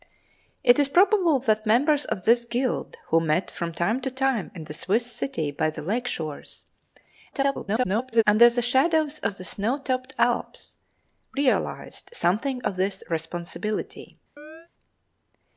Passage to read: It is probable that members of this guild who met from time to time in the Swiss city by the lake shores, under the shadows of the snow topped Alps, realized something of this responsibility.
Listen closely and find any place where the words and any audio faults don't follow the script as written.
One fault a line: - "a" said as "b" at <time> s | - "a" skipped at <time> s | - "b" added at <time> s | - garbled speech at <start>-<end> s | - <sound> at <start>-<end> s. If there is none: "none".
- garbled speech at 7.3-8.2 s
- chirp at 14.4-14.7 s